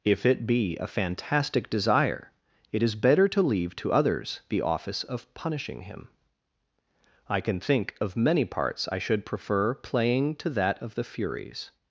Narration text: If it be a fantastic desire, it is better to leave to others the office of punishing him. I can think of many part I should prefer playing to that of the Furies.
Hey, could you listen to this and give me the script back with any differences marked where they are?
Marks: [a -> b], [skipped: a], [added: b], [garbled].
If it be a fantastic desire, it is better to leave to others the office of punishing him. I can think of many [part -> parts] I should prefer playing to that of the Furies.